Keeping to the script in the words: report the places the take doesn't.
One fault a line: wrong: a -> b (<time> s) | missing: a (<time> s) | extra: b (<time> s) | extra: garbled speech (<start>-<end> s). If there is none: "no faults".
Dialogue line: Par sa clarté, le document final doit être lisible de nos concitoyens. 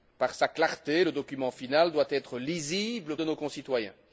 no faults